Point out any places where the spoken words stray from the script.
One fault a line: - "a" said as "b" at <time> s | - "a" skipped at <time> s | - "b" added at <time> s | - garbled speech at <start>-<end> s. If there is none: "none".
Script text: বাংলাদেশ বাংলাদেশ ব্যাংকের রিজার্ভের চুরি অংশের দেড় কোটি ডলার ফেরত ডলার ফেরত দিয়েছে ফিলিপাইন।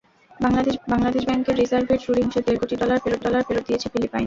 none